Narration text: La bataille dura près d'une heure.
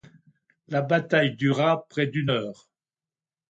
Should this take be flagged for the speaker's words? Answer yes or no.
no